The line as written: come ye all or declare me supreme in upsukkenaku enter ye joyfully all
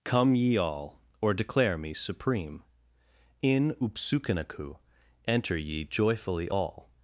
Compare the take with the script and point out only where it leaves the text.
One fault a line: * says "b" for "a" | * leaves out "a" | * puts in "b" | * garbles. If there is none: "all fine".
all fine